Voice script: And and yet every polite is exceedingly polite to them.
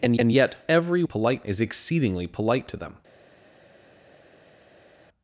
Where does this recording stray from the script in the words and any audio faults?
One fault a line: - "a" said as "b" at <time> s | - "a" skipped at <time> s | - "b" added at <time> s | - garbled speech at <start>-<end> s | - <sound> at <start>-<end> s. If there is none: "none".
none